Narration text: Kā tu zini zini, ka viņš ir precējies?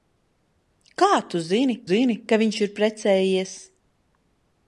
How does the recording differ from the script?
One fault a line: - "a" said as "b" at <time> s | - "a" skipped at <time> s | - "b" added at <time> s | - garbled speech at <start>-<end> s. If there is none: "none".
none